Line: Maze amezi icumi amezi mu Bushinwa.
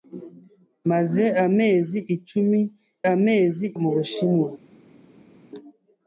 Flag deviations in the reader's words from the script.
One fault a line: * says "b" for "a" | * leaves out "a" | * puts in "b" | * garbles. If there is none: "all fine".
all fine